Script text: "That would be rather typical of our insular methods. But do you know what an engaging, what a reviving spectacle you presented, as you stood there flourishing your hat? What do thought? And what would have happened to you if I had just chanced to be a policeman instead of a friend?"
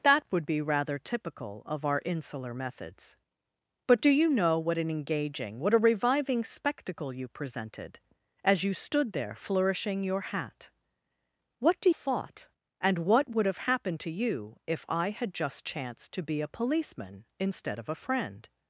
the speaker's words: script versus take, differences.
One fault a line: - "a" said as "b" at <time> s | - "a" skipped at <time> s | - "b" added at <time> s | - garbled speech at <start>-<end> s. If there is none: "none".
none